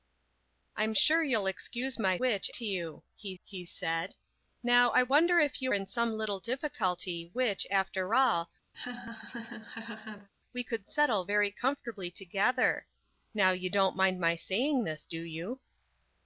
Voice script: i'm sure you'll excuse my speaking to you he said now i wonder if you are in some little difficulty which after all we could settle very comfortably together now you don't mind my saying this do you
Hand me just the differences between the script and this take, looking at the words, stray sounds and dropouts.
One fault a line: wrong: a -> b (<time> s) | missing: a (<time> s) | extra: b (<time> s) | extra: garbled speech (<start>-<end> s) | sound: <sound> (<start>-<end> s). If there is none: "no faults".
wrong: speaking -> which (2.2 s)
extra: he (3.4 s)
missing: are (5.7 s)
sound: laugh (8.7-10.3 s)